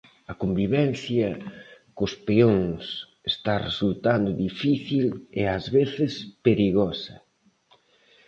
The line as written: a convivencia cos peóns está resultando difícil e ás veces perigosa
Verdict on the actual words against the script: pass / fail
pass